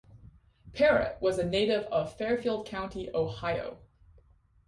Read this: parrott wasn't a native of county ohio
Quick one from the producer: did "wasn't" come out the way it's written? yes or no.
no